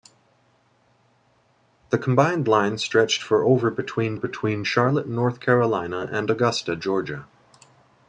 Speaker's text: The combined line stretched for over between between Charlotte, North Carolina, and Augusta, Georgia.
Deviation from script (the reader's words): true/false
false